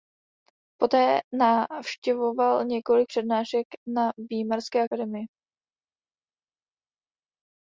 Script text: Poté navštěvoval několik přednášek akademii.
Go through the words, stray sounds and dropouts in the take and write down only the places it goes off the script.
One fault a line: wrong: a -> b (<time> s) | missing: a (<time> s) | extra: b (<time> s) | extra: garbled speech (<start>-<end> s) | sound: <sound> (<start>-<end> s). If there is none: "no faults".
extra: na Výmarské (3.9 s)